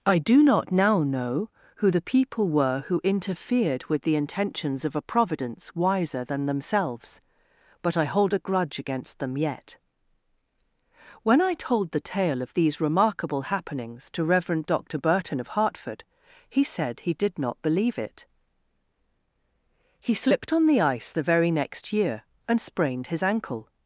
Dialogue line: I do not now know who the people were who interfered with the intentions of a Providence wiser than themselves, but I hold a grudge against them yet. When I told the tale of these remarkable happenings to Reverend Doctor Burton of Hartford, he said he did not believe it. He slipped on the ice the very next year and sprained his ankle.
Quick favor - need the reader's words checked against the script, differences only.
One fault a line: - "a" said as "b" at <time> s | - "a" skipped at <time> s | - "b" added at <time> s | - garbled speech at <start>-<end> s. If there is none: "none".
none